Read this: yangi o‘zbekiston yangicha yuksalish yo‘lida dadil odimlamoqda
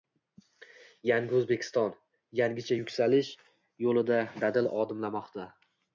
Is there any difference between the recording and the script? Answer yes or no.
no